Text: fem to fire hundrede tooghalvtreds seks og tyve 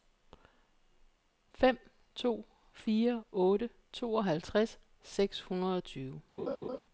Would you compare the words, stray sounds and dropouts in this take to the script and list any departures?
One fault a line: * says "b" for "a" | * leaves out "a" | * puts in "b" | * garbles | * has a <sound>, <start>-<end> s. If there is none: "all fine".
* says "otte" for "hundrede"
* puts in "hundrede"
* has a laugh, 6.4-6.8 s